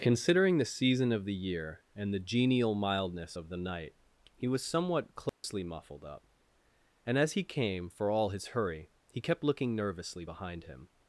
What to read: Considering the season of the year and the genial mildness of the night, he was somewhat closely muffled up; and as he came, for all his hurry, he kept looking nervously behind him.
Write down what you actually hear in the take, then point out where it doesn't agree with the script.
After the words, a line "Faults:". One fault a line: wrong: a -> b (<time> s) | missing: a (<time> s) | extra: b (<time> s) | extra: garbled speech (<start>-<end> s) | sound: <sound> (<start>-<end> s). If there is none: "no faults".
Considering the season of the year and the genial mildness of the night, he was somewhat closely muffled up; and as he came, for all his hurry, he kept looking nervously behind him.
Faults:
sound: dropout (5.3-5.4 s)